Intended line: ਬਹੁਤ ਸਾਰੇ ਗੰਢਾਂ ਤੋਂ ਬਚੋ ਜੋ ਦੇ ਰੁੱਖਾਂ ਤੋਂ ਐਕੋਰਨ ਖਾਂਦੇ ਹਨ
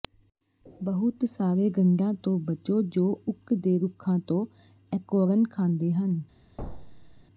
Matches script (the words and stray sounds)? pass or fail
fail